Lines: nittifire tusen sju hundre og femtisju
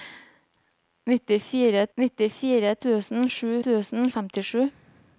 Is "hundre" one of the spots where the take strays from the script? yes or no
yes